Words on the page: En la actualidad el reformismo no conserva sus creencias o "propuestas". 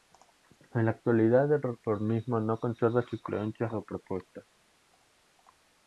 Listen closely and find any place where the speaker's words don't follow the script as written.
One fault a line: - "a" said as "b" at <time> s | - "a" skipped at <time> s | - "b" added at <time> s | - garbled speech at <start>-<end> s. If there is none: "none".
none